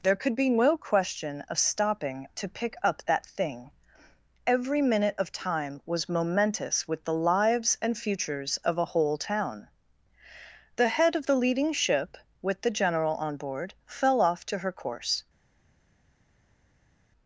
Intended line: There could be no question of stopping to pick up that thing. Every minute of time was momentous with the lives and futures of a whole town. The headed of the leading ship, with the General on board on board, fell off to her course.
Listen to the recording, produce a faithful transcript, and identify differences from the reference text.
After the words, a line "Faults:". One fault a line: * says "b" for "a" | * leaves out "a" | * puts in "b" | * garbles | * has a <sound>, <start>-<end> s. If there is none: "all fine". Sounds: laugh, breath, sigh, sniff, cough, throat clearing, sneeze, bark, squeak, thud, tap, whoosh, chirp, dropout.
There could be no question of stopping to pick up that thing. Every minute of time was momentous with the lives and futures of a whole town. The head of the leading ship, with the General on board, fell off to her course.
Faults:
* says "head" for "headed"
* leaves out "on board"